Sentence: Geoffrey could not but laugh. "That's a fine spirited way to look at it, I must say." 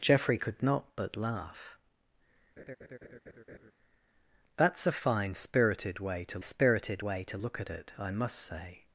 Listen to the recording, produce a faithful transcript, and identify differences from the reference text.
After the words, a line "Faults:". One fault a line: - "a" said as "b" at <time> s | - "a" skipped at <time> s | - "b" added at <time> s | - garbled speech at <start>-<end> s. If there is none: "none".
Geoffrey could not but laugh. "That's a fine spirited way to spirited way to look at it, I must say."
Faults:
- "spirited way to" added at 6.4 s